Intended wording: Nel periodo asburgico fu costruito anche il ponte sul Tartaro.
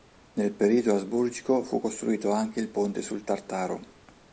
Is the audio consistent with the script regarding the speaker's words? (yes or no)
yes